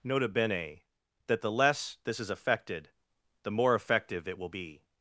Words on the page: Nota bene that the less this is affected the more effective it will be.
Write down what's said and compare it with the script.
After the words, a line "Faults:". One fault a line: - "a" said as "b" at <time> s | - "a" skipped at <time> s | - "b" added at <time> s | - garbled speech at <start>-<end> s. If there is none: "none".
Nota bene that the less this is affected the more effective it will be.
Faults:
none